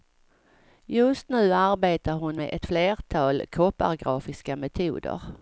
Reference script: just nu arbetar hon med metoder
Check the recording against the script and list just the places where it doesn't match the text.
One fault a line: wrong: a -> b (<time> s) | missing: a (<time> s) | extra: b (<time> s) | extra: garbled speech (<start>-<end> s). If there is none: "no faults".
extra: ett flertal koppargrafiska (2.5 s)